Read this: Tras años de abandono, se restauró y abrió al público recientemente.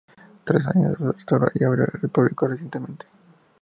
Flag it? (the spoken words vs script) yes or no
yes